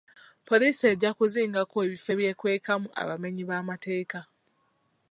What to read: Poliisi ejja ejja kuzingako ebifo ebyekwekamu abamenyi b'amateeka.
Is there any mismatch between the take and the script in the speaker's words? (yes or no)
yes